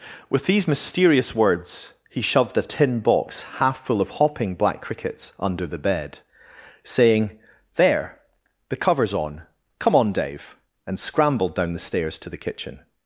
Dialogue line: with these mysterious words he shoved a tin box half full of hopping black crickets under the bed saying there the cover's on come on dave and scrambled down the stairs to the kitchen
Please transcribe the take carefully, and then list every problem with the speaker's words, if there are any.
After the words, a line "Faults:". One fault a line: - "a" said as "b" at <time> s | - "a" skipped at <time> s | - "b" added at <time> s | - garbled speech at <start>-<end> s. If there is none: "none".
with these mysterious words he shoved a tin box half full of hopping black crickets under the bed saying there the cover's on come on dave and scrambled down the stairs to the kitchen
Faults:
none